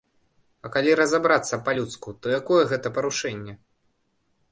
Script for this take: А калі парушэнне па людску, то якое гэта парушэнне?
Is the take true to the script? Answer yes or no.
no